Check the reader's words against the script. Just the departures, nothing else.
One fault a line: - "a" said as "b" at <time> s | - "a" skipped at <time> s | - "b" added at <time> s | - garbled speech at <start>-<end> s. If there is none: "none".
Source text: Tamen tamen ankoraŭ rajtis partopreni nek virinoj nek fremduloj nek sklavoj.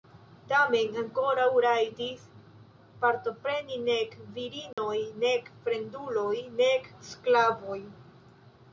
- "tamen" skipped at 0.9 s